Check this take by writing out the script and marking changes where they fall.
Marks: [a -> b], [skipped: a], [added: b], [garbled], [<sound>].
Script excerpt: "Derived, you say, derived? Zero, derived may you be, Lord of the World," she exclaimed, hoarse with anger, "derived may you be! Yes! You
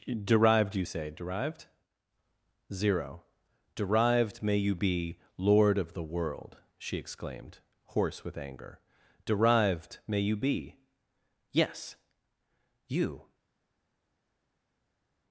"Derived, you say, derived? Zero, derived may you be, Lord of the World," she exclaimed, hoarse with anger, "derived may you be! Yes! You